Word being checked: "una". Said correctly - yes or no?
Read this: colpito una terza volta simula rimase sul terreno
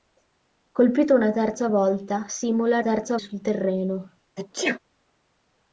yes